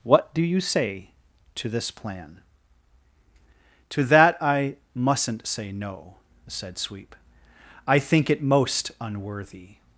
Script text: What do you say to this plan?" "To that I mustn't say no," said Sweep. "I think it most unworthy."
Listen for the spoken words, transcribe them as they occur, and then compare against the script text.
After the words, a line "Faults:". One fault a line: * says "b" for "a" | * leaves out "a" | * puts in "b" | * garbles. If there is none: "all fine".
What do you say to this plan?" "To that I mustn't say no," said Sweep. "I think it most unworthy."
Faults:
all fine